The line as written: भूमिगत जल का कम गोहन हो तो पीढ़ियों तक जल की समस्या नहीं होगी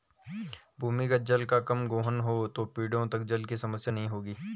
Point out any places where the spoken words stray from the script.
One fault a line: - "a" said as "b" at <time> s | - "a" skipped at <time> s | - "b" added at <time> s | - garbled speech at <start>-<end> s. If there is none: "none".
none